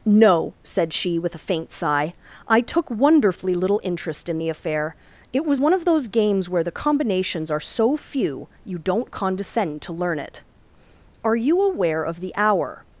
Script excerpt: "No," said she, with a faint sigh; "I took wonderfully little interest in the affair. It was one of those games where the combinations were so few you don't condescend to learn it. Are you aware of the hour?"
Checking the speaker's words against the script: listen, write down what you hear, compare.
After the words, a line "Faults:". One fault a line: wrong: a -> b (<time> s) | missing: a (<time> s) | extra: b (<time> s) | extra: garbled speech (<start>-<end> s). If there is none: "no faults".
"No," said she, with a faint sigh; "I took wonderfully little interest in the affair. It was one of those games where the combinations are so few you don't condescend to learn it. Are you aware of the hour?"
Faults:
wrong: were -> are (7.5 s)